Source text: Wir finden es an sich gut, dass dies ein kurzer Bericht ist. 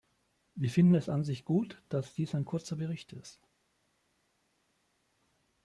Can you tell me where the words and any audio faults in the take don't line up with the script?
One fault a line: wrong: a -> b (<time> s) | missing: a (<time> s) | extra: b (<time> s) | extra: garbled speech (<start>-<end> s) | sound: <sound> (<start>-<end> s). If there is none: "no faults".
no faults